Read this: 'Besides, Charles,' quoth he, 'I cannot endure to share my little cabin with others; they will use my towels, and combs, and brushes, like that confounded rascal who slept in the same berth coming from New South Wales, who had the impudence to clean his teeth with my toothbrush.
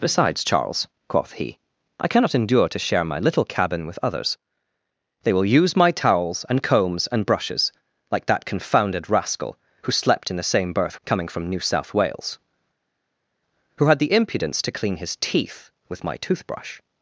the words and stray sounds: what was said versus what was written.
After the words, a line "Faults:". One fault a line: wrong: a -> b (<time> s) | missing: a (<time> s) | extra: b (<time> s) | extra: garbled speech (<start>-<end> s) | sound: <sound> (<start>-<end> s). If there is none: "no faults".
'Besides, Charles,' quoth he, 'I cannot endure to share my little cabin with others; they will use my towels, and combs, and brushes, like that confounded rascal who slept in the same berth coming from New South Wales, who had the impudence to clean his teeth with my toothbrush.
Faults:
no faults